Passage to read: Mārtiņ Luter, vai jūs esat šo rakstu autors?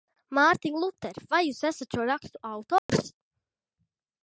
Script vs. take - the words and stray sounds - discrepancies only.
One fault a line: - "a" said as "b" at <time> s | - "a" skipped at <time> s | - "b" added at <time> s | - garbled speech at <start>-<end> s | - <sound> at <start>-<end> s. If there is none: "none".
- dropout at 2.8-2.9 s